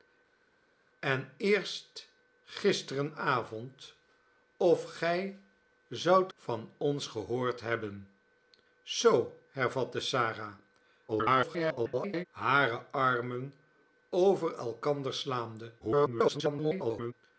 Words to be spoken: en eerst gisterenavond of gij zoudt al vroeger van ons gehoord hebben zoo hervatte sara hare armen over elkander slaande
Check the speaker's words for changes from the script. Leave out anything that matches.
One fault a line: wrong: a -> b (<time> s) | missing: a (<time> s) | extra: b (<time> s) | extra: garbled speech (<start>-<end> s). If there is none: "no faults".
missing: al vroeger (6.3 s)
extra: garbled speech (11.1-12.3 s)
extra: garbled speech (15.8-17.1 s)